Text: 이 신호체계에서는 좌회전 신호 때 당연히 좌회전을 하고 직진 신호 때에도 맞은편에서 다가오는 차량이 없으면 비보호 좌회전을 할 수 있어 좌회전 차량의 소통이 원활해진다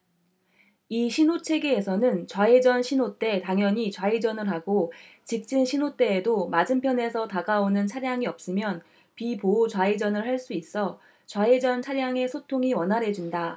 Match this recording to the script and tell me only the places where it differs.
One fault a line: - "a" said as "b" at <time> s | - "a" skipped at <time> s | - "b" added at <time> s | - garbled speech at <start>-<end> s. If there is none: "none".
none